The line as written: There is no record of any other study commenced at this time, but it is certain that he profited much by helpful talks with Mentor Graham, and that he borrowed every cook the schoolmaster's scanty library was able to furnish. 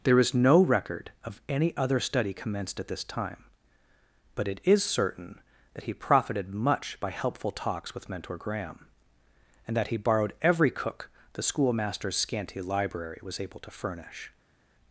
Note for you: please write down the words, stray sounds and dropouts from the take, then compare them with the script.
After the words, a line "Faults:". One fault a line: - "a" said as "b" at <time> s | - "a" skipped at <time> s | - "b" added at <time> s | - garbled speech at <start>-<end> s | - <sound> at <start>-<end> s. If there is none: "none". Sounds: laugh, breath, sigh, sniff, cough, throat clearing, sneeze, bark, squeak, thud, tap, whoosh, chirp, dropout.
There is no record of any other study commenced at this time, but it is certain that he profited much by helpful talks with Mentor Graham, and that he borrowed every cook the schoolmaster's scanty library was able to furnish.
Faults:
none